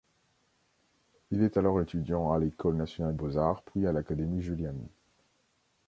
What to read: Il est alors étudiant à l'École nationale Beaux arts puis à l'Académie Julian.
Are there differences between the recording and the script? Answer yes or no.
no